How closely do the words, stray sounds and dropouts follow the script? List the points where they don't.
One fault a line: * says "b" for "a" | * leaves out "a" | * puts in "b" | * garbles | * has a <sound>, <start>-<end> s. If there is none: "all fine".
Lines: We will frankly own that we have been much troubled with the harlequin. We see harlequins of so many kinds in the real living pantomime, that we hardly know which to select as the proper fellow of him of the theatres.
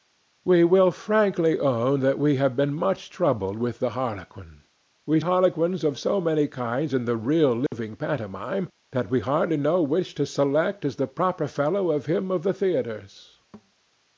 * leaves out "see"
* has a dropout, 7.7-7.7 s
* has a thud, 13.5-13.7 s